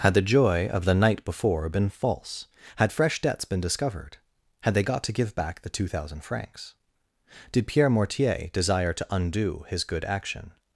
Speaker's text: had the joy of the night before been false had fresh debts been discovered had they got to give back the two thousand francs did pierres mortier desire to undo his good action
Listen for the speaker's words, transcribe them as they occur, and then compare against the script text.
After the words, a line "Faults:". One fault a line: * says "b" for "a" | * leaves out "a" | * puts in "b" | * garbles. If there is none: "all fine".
had the joy of the night before been false had fresh debts been discovered had they got to give back the two thousand francs did pierre mortier desire to undo his good action
Faults:
* says "pierre" for "pierres"